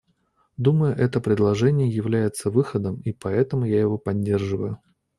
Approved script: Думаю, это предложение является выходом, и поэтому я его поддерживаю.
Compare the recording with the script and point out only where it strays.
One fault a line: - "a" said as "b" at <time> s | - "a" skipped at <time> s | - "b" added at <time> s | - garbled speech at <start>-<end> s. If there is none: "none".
none